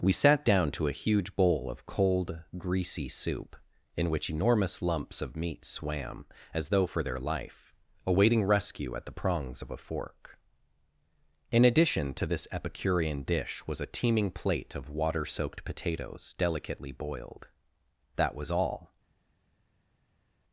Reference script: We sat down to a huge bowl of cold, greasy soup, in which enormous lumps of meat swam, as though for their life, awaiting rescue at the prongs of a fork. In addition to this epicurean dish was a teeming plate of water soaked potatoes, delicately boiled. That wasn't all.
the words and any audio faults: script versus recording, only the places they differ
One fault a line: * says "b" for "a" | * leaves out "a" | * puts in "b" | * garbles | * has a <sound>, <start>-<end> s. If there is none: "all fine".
* says "was" for "wasn't"